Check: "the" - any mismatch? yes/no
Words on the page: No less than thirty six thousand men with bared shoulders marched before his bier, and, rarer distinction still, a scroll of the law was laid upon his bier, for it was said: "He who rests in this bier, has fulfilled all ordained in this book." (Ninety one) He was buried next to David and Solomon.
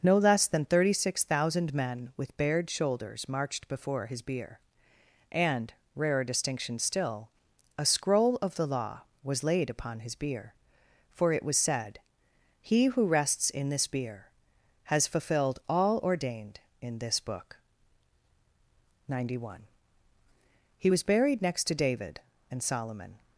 no